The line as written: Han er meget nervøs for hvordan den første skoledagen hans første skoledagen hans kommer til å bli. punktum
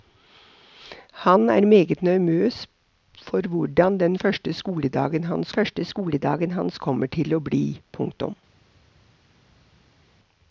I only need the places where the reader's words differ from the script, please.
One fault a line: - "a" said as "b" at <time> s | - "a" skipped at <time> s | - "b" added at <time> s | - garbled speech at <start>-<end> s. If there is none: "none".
none